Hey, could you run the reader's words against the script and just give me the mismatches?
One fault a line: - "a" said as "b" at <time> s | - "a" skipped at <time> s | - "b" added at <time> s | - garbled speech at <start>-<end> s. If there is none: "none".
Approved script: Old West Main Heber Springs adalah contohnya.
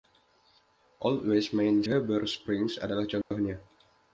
none